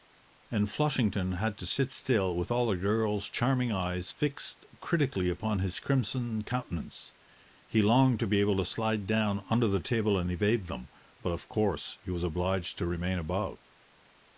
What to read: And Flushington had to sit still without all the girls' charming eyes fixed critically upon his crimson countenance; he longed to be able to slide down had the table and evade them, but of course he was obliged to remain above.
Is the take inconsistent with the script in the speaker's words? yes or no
yes